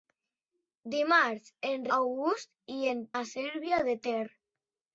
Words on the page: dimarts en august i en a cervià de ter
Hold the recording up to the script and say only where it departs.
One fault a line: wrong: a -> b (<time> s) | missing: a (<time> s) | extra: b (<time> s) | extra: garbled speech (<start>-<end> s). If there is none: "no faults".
no faults